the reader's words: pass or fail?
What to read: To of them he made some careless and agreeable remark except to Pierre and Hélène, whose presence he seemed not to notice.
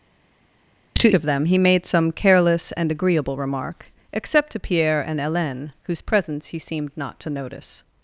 pass